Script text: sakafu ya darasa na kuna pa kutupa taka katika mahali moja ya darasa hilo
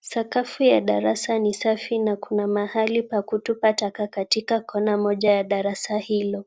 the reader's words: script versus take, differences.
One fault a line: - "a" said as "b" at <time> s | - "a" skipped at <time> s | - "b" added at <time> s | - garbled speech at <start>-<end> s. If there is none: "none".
- "ni safi" added at 1.4 s
- "mahali" added at 2.5 s
- "mahali" said as "kona" at 4.6 s